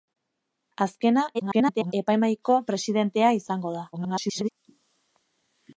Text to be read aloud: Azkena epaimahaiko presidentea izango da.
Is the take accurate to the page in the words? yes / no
no